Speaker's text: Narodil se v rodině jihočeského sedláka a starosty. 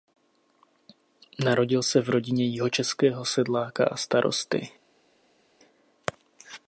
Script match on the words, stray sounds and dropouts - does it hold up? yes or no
yes